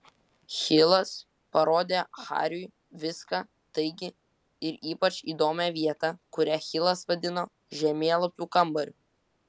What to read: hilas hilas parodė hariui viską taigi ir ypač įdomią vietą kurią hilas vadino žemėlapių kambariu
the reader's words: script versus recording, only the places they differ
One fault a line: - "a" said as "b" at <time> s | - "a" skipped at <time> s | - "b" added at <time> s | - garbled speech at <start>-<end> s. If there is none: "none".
- "hilas" skipped at 1.1 s